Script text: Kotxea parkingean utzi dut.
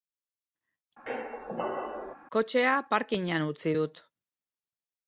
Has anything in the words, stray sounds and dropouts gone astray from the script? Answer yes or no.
yes